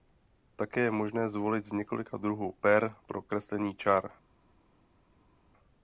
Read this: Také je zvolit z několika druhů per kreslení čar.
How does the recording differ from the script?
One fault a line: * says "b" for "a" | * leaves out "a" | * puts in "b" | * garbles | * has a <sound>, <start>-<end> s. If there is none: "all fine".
* puts in "možné"
* puts in "pro"